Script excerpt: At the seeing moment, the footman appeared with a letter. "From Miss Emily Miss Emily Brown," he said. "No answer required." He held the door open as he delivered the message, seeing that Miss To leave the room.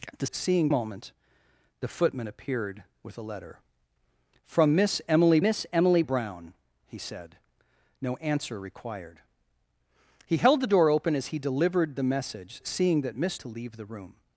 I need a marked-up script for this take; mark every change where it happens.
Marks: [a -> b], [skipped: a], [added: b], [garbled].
At the seeing moment, the footman appeared with a letter. "From Miss Emily Miss Emily Brown," he said. "No answer required." He held the door open as he delivered the message, seeing that Miss To leave the room.